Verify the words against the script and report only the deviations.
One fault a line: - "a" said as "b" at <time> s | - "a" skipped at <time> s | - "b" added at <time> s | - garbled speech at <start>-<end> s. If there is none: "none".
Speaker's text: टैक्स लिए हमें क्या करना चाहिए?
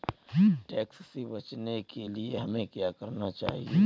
- "से बचने के" added at 1.1 s